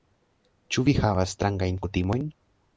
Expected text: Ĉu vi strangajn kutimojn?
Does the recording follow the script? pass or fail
fail